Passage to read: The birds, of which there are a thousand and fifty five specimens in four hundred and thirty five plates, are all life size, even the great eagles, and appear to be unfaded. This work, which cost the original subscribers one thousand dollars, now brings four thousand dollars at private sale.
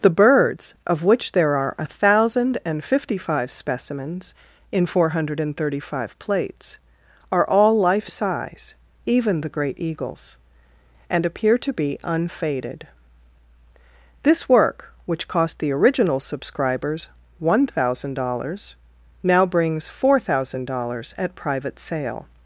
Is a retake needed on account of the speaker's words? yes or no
no